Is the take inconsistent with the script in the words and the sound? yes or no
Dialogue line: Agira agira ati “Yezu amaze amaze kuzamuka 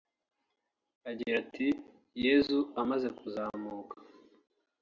yes